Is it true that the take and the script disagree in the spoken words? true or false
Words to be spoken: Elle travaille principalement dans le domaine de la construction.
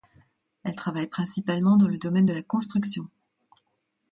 false